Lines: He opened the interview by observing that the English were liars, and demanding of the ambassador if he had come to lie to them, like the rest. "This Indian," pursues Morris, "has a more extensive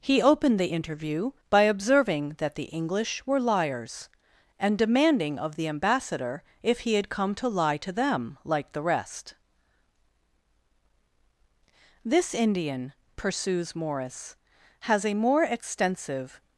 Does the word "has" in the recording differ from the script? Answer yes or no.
no